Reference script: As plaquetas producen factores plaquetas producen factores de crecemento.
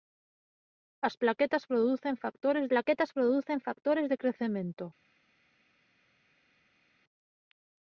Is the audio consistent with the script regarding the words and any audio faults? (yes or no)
yes